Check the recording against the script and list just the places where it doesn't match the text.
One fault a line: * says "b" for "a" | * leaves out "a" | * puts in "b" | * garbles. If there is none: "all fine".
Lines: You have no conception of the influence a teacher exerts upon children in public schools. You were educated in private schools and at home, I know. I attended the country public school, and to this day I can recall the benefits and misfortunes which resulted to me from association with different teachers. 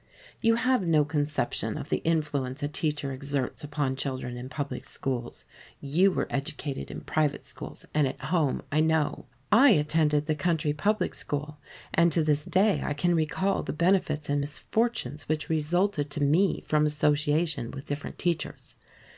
all fine